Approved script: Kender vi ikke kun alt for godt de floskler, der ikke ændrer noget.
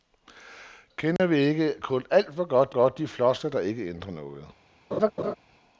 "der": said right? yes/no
yes